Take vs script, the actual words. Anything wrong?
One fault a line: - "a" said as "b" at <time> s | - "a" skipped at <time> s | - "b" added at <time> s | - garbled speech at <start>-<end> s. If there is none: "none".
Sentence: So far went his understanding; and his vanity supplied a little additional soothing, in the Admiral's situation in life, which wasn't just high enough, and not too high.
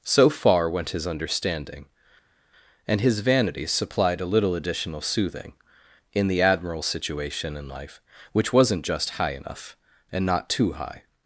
none